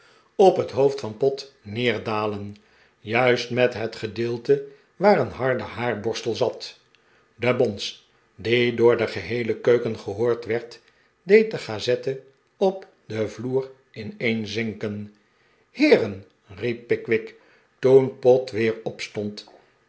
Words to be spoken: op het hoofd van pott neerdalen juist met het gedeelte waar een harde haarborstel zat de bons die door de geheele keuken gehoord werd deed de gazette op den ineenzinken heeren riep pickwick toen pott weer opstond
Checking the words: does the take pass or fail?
fail